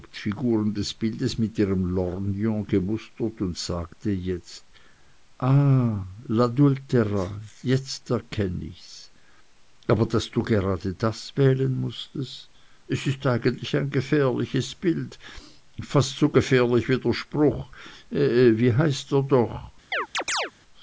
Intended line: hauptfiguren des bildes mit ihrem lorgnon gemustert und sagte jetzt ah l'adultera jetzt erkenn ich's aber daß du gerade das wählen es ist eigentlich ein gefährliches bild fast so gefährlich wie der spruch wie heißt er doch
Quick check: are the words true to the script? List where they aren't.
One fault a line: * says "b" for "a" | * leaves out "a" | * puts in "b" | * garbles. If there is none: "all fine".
* puts in "mußtest"